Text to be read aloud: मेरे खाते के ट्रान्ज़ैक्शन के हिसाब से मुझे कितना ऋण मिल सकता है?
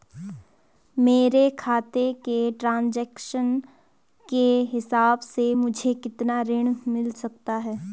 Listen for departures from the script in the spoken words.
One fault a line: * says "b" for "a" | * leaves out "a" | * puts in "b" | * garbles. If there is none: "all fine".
all fine